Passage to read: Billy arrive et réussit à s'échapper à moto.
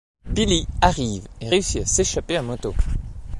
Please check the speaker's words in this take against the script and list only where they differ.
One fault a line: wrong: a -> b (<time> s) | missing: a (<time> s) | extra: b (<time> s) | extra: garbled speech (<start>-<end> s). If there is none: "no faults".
no faults